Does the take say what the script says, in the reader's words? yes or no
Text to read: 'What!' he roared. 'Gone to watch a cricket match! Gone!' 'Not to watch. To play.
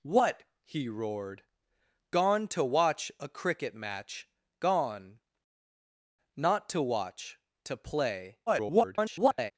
no